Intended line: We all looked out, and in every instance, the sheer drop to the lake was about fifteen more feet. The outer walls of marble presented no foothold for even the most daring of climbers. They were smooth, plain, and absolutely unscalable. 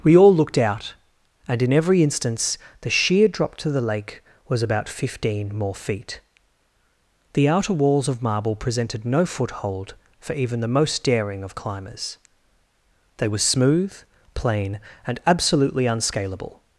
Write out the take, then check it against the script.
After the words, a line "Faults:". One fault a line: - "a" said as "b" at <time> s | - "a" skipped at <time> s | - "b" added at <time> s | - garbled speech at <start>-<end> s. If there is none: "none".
We all looked out, and in every instance, the sheer drop to the lake was about fifteen more feet. The outer walls of marble presented no foothold for even the most daring of climbers. They were smooth, plain, and absolutely unscalable.
Faults:
none